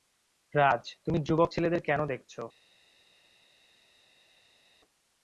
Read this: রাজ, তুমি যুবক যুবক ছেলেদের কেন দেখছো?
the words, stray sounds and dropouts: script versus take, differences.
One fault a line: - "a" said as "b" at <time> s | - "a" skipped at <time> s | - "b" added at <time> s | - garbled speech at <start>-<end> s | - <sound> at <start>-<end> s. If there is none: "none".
- "যুবক" skipped at 1.5 s